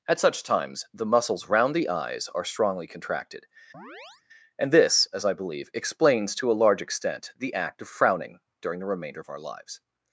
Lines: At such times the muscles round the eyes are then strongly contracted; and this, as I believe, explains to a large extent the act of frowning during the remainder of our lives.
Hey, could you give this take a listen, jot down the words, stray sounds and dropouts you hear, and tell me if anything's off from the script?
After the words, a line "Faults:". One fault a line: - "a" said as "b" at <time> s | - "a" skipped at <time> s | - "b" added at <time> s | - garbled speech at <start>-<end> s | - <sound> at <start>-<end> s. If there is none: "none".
At such times the muscles round the eyes are strongly contracted; and this, as I believe, explains to a large extent the act of frowning during the remainder of our lives.
Faults:
- "then" skipped at 2.4 s
- chirp at 3.7-4.2 s